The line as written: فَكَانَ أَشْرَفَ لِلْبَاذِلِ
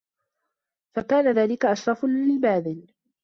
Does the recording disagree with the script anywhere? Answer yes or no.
yes